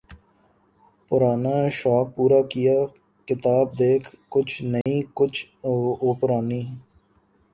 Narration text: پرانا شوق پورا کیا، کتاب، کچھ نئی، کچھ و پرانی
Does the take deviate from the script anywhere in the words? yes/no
yes